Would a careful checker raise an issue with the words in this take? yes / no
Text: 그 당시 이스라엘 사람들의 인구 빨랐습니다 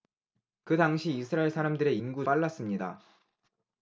no